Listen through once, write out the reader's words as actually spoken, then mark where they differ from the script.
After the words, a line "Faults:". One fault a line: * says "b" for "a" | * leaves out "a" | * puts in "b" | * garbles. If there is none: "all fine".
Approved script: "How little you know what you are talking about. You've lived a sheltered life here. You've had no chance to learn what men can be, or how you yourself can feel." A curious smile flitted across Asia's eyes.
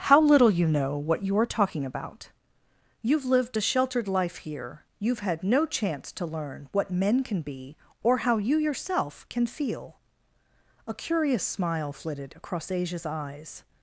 "How little you know what you are talking about. You've lived a sheltered life here. You've had no chance to learn what men can be, or how you yourself can feel." A curious smile flitted across Asia's eyes.
Faults:
all fine